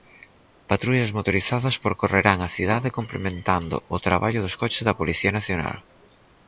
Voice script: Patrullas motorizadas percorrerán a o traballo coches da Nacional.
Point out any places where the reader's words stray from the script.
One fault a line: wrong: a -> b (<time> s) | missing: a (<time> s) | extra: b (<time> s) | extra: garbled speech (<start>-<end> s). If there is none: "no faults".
extra: cidade complementando (2.6 s)
extra: dos (4.5 s)
extra: Policía (5.0 s)